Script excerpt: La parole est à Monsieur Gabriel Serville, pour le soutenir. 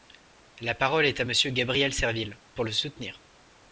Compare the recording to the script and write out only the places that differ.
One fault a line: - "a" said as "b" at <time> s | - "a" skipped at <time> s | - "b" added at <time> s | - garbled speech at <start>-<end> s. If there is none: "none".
none